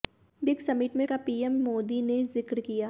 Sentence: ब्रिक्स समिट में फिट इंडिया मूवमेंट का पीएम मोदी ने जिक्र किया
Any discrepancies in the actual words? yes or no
yes